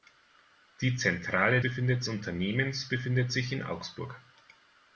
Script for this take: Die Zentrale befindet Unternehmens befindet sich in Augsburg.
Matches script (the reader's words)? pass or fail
pass